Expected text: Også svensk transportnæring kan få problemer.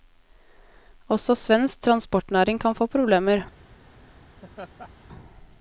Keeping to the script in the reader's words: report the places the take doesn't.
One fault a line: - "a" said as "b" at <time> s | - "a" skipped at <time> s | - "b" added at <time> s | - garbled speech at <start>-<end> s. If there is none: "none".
none